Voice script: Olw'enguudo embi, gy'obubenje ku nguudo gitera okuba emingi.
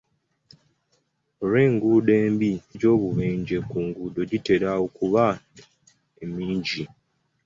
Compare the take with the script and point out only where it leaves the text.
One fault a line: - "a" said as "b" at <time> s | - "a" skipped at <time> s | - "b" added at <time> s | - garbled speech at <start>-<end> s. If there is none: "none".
none